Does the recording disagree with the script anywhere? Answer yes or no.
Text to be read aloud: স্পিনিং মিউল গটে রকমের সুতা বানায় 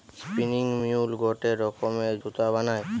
no